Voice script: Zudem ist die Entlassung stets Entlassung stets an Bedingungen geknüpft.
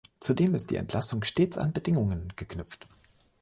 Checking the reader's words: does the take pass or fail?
fail